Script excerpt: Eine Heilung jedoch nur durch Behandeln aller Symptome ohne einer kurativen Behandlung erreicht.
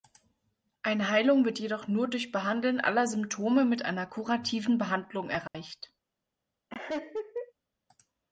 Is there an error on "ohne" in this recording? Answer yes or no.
yes